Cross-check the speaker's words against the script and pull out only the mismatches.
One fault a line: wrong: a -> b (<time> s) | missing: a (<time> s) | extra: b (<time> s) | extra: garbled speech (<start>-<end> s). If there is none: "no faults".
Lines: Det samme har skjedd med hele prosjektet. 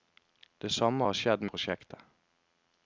missing: med hele (1.4 s)